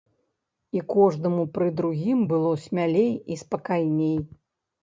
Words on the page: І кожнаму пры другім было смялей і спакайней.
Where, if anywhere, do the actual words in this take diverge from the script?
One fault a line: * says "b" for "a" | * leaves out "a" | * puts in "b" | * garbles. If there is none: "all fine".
all fine